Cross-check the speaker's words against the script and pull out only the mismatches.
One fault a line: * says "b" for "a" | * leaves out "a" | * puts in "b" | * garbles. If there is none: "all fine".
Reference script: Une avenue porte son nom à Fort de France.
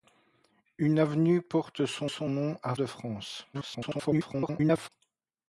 * puts in "son"
* leaves out "Fort"
* garbles